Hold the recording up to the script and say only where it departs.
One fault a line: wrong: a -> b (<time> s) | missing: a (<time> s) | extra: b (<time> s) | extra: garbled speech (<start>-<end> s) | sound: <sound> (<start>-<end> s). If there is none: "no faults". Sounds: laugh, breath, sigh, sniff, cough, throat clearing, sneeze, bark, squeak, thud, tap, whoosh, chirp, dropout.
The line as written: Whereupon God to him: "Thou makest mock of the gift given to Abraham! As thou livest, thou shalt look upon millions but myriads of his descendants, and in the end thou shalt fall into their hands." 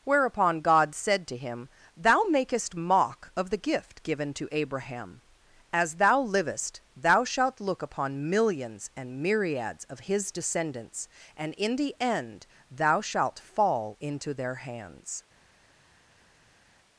extra: said (0.9 s)
wrong: but -> and (8.9 s)